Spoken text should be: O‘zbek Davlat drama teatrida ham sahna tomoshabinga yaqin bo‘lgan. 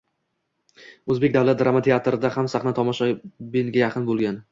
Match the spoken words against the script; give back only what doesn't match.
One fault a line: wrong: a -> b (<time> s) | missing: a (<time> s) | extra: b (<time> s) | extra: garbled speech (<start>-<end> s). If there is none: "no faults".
no faults